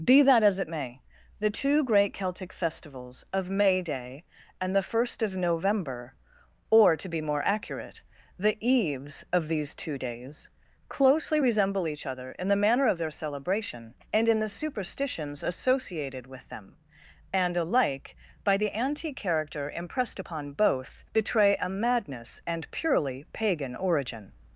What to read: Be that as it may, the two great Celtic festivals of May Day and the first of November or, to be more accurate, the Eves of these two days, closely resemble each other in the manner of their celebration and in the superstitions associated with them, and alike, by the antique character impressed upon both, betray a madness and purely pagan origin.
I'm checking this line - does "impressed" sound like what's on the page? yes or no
yes